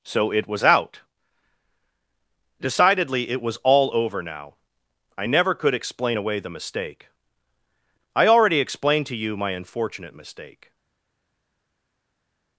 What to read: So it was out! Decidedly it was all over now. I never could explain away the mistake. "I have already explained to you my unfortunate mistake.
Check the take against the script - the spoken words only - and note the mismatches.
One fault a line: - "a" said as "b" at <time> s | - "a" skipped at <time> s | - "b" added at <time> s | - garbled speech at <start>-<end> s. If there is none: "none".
- "have" skipped at 8.3 s